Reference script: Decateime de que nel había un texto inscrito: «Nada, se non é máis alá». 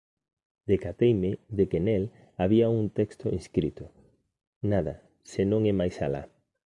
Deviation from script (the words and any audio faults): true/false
false